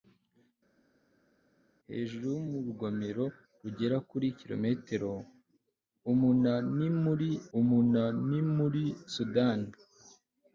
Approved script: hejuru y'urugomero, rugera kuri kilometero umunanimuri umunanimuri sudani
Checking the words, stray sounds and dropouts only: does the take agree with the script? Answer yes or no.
yes